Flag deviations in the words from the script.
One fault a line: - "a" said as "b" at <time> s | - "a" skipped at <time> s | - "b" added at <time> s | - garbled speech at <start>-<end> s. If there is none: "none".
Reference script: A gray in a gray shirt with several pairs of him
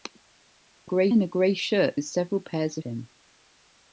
none